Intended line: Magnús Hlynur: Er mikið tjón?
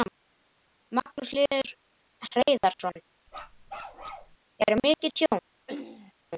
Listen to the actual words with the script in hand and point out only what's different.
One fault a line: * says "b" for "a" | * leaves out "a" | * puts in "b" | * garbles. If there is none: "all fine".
* puts in "Hreiðarsson"